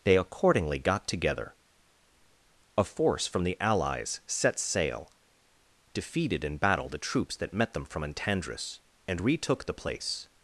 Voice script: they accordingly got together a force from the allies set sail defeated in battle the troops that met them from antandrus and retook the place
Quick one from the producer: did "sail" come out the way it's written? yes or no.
yes